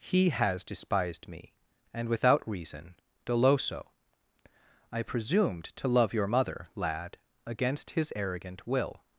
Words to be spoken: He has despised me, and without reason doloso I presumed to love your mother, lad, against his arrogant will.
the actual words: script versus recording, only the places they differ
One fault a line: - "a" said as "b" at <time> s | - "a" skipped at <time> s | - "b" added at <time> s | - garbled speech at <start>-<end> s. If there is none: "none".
none